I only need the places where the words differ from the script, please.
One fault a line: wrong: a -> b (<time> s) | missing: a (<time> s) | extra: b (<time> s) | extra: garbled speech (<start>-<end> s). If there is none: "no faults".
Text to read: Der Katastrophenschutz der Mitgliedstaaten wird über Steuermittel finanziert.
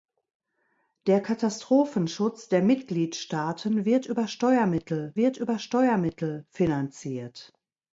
extra: wird über Steuermittel (5.1 s)